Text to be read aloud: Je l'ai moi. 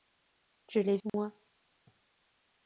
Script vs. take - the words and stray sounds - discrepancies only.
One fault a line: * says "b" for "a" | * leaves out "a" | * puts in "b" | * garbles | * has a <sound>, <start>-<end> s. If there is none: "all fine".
* has a dropout, 1.1-1.1 s